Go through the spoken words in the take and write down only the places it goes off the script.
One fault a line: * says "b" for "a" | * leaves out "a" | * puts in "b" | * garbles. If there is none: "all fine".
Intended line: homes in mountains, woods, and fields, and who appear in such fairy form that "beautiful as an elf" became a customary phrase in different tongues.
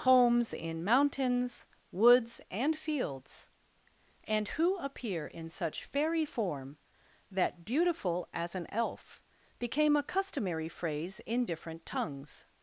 all fine